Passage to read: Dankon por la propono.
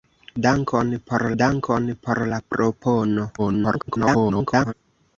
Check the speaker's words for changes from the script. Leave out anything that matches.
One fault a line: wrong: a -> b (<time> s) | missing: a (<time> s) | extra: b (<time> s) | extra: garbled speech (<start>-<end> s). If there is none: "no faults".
extra: dankon por (1.4 s)
extra: garbled speech (3.4-4.7 s)